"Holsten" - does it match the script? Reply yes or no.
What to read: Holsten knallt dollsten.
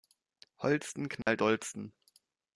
yes